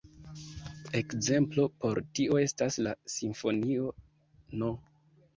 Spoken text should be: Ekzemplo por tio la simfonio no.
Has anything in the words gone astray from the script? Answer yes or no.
yes